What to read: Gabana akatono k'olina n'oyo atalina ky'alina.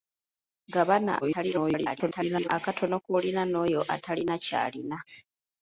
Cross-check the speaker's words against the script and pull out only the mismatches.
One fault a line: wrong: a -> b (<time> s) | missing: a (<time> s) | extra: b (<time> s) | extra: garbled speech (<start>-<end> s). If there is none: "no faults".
extra: garbled speech (1.2-2.5 s)